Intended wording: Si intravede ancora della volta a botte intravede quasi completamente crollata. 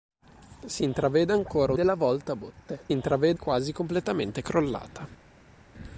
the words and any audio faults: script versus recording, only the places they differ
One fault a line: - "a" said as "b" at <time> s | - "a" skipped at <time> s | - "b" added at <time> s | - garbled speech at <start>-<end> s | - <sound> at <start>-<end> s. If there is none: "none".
none